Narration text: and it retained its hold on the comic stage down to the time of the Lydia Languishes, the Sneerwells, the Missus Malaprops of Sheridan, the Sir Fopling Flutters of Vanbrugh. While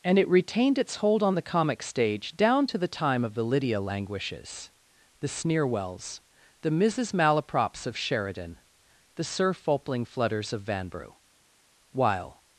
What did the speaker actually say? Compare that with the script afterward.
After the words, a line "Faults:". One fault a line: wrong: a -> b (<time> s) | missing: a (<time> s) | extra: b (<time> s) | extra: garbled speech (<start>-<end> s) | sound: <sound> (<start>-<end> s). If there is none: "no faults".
and it retained its hold on the comic stage down to the time of the Lydia Languishes, the Sneerwells, the Missus Malaprops of Sheridan, the Sir Fopling Flutters of Vanbrugh. While
Faults:
no faults